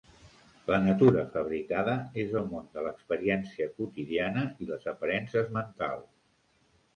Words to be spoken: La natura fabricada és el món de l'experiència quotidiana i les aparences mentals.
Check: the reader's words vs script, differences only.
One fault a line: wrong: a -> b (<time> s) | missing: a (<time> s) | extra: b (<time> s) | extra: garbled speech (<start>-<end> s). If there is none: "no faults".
no faults